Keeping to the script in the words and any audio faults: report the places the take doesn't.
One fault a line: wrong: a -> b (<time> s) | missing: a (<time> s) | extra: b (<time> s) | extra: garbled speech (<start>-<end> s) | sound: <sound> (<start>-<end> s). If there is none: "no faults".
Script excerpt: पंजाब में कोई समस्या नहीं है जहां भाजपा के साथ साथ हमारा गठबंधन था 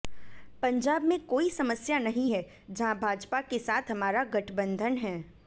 missing: साथ (3.9 s)
wrong: था -> है (5.0 s)